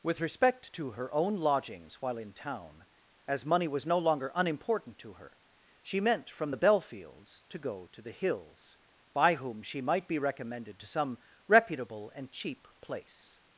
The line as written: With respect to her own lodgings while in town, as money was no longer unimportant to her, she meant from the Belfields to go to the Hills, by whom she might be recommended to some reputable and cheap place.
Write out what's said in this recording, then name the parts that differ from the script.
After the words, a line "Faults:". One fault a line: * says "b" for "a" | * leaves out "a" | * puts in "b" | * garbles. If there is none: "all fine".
With respect to her own lodgings while in town, as money was no longer unimportant to her, she meant from the Belfields to go to the Hills, by whom she might be recommended to some reputable and cheap place.
Faults:
all fine